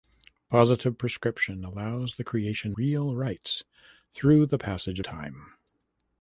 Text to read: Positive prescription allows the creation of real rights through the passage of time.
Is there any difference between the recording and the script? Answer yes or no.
yes